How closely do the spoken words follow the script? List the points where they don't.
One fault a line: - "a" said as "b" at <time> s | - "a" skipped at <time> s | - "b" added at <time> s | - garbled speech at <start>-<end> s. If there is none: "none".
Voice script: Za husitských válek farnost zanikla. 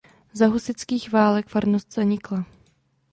none